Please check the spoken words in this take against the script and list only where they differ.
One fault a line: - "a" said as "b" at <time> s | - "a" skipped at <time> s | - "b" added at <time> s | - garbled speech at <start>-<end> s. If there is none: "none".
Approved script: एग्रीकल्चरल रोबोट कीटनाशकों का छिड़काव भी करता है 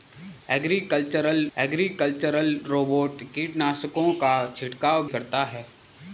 - "एग्रीकल्चरल" added at 1.6 s
- "भी" skipped at 5.1 s